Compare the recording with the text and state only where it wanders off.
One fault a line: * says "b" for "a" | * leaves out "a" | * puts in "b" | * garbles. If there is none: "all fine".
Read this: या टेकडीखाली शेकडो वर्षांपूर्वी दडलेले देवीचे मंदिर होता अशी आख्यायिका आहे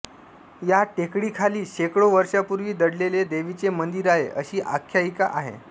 * says "आहे" for "होता"